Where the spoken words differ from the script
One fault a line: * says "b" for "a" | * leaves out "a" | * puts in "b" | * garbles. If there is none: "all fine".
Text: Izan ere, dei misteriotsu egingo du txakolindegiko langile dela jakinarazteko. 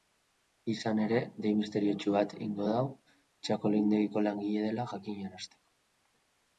* puts in "bat"